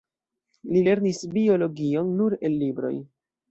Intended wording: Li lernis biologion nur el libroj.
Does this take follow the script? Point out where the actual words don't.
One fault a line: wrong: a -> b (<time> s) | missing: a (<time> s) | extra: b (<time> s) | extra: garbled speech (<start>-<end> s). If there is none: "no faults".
no faults